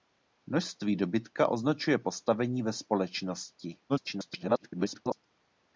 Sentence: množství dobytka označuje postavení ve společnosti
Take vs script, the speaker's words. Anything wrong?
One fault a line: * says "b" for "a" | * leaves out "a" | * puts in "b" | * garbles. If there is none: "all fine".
* garbles